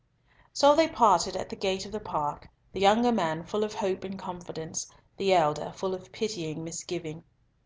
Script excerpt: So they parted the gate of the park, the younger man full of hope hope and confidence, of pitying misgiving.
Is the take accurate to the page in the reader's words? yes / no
no